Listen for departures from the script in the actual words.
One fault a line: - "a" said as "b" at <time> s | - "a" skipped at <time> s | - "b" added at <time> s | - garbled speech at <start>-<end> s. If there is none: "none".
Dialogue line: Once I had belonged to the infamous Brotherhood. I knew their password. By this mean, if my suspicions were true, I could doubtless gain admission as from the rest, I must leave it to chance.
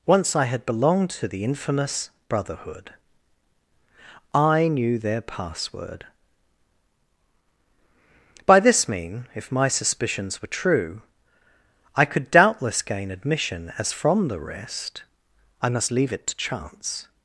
none